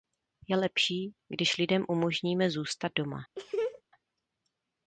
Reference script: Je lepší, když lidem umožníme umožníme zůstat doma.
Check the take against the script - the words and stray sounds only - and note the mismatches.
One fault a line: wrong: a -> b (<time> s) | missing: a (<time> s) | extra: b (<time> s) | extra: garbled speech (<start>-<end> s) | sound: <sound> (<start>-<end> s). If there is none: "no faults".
missing: umožníme (2.5 s)
sound: laugh (3.4-3.8 s)